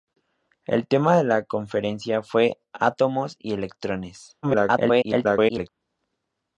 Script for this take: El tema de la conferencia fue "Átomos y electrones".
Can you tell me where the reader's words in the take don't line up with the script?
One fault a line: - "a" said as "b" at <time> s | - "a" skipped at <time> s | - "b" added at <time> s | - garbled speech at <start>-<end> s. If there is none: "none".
- garbled speech at 4.4-5.7 s